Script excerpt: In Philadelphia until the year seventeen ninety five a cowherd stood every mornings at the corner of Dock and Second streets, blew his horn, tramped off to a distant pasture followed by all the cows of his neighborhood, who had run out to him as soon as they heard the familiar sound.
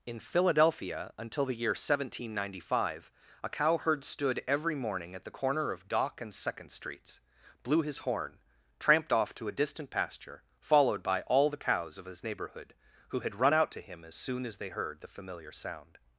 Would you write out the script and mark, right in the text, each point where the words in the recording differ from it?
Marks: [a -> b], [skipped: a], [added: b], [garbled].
In Philadelphia until the year seventeen ninety five a cowherd stood every [mornings -> morning] at the corner of Dock and Second streets, blew his horn, tramped off to a distant pasture followed by all the cows of his neighborhood, who had run out to him as soon as they heard the familiar sound.